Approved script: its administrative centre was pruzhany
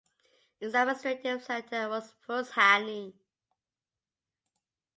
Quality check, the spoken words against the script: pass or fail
pass